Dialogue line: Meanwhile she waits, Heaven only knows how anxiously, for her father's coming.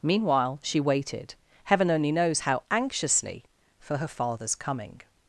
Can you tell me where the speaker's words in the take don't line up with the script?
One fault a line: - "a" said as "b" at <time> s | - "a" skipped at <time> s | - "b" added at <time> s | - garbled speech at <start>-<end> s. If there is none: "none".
- "waits" said as "waited" at 0.8 s